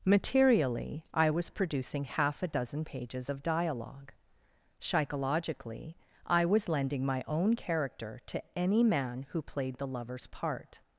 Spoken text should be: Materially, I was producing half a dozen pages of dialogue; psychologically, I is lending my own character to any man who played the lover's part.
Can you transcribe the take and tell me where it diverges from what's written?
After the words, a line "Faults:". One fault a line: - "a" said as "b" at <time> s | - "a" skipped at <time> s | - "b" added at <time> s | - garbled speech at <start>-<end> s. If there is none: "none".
Materially, I was producing half a dozen pages of dialogue; psychologically, I was lending my own character to any man who played the lover's part.
Faults:
- "is" said as "was" at 6.5 s